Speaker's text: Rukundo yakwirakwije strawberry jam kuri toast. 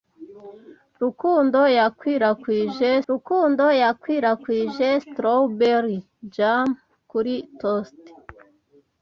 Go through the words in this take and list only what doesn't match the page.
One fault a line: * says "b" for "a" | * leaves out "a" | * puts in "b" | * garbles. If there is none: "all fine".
* puts in "rukundo yakwirakwije"